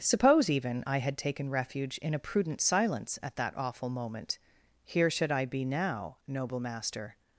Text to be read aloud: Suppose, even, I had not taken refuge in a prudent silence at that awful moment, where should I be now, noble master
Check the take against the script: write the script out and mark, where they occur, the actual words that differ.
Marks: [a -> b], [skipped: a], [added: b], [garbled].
Suppose, even, I had [skipped: not] taken refuge in a prudent silence at that awful moment, [where -> here] should I be now, noble master